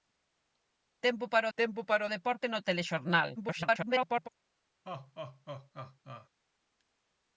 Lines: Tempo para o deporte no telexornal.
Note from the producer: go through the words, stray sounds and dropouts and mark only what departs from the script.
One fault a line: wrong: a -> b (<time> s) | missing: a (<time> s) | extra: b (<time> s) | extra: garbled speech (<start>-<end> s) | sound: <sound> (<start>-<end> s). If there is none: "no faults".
extra: tempo para (1.6 s)
extra: garbled speech (3.4-4.3 s)
sound: laugh (4.8-6.3 s)